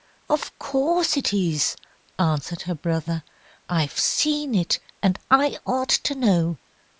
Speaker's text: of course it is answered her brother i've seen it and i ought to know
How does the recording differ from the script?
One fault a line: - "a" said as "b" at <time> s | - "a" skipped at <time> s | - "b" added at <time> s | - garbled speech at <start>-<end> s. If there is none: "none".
none